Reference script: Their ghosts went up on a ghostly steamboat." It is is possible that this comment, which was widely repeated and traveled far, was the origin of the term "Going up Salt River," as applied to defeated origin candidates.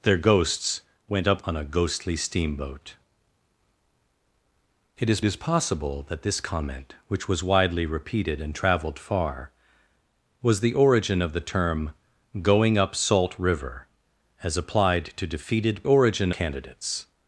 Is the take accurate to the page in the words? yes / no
yes